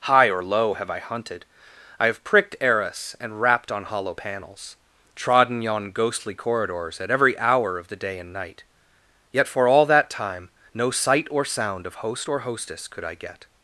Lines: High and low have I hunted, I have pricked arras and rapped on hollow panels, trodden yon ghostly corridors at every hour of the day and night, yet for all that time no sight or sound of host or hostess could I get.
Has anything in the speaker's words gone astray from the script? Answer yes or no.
yes